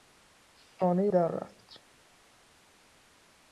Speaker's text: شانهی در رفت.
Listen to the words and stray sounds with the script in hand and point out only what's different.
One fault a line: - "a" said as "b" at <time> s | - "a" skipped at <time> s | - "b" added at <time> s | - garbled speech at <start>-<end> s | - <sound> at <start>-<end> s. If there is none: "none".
none